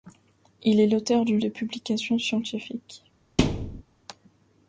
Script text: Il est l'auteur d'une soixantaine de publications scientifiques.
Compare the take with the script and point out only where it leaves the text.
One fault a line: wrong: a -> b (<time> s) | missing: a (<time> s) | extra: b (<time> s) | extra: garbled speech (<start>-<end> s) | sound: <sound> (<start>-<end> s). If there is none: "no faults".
missing: soixantaine (1.4 s)
sound: thud (3.4-3.8 s)